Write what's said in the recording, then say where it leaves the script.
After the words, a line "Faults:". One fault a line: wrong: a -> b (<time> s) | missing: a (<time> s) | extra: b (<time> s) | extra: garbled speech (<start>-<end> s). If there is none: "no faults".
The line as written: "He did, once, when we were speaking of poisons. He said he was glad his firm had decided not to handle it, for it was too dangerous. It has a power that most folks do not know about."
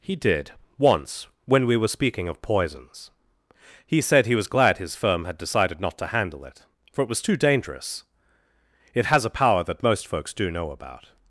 "He did, once, when we were speaking of poisons. He said he was glad his firm had decided not to handle it, for it was too dangerous. It has a power that most folks do know about."
Faults:
missing: not (10.5 s)